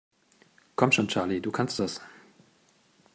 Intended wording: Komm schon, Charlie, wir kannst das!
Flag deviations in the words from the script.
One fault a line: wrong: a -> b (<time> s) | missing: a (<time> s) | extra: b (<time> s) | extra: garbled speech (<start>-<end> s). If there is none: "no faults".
wrong: wir -> du (1.4 s)